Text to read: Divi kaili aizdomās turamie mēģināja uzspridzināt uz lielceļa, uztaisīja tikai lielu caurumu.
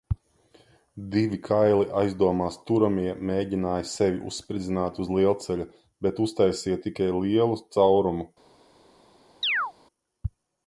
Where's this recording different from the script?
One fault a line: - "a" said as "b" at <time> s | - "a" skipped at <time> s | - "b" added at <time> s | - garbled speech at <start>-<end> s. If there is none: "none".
- "sevi" added at 3.9 s
- "bet" added at 6.1 s